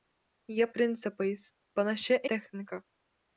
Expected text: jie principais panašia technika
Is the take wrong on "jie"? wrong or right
right